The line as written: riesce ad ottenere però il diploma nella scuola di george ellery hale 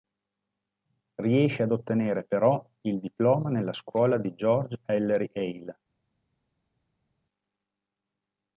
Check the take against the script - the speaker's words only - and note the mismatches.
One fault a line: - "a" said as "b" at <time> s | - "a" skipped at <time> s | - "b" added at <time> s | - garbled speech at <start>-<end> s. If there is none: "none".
none